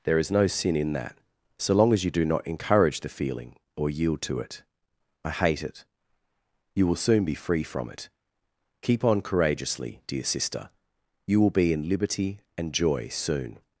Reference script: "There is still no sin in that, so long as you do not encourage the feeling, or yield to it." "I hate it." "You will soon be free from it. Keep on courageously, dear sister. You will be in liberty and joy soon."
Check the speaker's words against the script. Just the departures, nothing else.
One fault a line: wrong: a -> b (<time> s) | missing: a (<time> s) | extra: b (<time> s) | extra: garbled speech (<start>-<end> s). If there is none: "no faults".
missing: still (0.3 s)